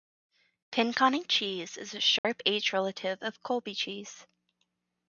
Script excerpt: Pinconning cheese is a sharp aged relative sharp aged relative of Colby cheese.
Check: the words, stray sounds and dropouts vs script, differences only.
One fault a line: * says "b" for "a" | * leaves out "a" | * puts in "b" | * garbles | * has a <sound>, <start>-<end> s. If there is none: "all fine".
* has a dropout, 2.2-2.2 s
* leaves out "sharp aged relative"